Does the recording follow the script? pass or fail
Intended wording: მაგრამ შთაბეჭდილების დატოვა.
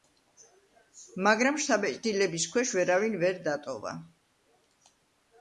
fail